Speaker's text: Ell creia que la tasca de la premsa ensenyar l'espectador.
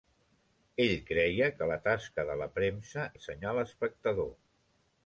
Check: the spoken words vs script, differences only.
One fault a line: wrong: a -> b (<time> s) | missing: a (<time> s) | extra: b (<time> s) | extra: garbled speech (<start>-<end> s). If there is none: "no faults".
no faults